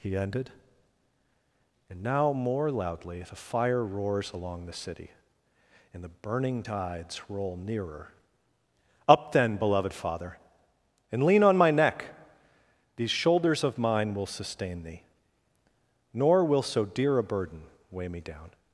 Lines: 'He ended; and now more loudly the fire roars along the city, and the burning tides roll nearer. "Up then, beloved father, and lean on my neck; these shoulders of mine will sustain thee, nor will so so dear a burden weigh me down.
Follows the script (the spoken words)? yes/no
no